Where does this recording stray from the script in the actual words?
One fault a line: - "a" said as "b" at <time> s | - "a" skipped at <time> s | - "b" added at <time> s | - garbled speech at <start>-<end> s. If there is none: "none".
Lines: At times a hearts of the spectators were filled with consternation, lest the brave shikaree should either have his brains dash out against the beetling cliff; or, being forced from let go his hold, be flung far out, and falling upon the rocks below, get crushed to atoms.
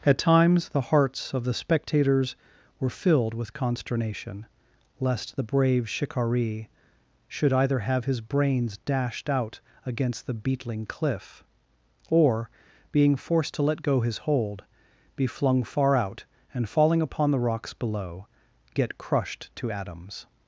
- "a" said as "the" at 0.7 s
- "dash" said as "dashed" at 8.8 s
- "from" said as "to" at 13.5 s